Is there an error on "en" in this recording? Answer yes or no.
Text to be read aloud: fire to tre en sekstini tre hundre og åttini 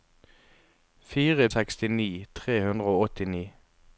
yes